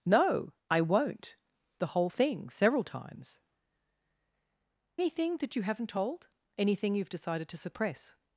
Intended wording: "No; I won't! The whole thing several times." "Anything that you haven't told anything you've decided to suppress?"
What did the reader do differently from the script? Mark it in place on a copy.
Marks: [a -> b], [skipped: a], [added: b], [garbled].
"No; I won't! The whole thing several times." "Anything that you haven't told anything you've decided to suppress?"